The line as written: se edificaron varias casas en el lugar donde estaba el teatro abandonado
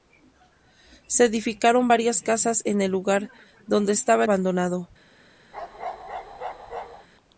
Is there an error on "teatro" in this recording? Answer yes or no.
yes